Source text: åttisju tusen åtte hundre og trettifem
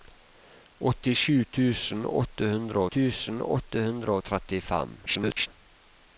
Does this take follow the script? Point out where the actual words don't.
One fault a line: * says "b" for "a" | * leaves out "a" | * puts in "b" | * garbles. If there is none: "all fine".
* puts in "tusen åtte hundre"
* garbles